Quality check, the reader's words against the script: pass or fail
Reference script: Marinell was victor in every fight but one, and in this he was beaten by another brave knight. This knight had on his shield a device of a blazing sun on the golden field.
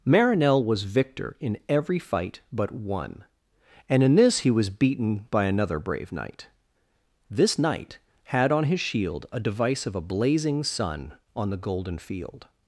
pass